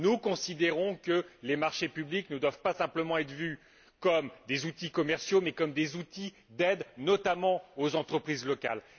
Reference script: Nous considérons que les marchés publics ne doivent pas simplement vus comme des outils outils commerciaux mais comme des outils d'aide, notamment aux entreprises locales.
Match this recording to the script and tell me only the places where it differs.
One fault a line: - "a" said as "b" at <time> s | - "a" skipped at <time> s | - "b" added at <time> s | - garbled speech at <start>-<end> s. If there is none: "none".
- "être" added at 3.2 s
- "outils" skipped at 4.9 s